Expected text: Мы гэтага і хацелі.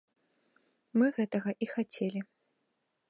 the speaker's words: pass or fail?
pass